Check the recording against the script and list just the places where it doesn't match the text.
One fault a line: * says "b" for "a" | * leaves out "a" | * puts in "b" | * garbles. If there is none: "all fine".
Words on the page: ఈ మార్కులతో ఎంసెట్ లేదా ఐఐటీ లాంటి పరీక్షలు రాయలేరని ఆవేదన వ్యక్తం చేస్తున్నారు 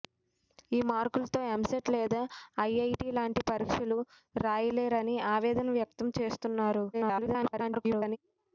* garbles